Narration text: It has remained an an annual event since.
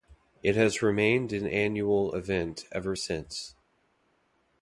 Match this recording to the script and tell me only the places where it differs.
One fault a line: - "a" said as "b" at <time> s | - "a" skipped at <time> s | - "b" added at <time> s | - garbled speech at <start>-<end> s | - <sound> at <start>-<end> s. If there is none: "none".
- "an" skipped at 1.4 s
- "ever" added at 2.7 s